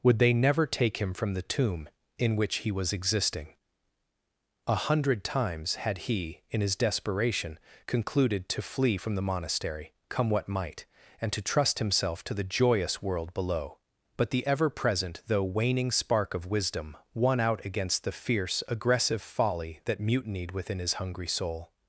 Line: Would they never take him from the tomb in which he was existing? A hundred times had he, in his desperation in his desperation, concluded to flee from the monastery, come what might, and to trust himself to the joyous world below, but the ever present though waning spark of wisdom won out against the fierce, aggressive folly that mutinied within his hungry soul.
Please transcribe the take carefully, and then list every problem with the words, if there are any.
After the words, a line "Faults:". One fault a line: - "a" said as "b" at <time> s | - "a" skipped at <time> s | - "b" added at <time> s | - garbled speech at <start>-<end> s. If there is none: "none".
Would they never take him from the tomb in which he was existing? A hundred times had he, in his desperation, concluded to flee from the monastery, come what might, and to trust himself to the joyous world below, but the ever present though waning spark of wisdom won out against the fierce, aggressive folly that mutinied within his hungry soul.
Faults:
- "in his desperation" skipped at 7.6 s